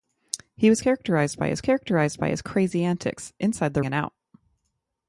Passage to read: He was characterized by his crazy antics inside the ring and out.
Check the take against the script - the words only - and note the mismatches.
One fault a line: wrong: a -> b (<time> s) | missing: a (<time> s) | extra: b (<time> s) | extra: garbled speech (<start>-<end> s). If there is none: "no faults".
extra: characterized by his (1.6 s)
missing: ring (3.8 s)